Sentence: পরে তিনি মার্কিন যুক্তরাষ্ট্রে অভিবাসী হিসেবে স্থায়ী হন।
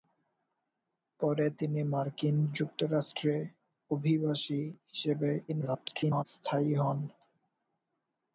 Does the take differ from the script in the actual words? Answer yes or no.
yes